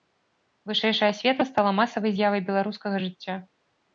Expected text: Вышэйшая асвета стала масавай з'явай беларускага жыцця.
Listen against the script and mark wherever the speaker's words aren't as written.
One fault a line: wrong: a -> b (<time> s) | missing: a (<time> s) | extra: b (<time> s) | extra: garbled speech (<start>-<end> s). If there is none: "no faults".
no faults